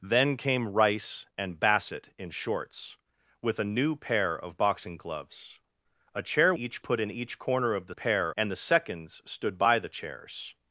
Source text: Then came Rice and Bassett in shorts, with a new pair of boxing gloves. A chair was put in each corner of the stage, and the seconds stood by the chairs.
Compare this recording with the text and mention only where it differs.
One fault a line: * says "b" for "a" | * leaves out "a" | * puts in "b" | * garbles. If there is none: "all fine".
* says "each" for "was"
* says "pair" for "stage"